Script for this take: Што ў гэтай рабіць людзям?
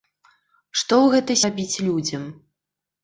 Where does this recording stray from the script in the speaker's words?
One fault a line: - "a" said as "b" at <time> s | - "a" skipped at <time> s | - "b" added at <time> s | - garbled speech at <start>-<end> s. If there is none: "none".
none